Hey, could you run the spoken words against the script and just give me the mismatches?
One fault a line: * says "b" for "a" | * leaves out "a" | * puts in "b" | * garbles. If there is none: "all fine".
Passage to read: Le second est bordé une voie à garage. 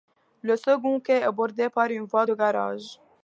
* puts in "quai"
* puts in "par"
* says "de" for "à"